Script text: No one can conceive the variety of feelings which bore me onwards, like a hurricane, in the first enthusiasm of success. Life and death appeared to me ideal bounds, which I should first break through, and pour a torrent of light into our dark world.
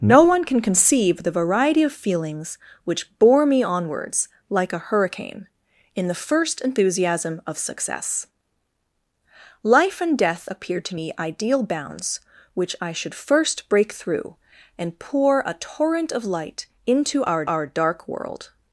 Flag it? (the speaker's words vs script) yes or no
yes